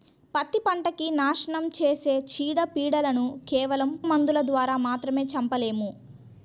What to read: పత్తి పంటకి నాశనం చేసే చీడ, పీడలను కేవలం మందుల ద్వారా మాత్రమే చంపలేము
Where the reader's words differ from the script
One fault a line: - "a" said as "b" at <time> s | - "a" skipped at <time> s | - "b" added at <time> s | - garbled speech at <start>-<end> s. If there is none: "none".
none